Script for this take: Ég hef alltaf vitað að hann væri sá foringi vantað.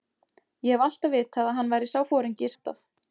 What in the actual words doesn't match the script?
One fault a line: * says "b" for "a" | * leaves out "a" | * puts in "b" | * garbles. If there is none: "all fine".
all fine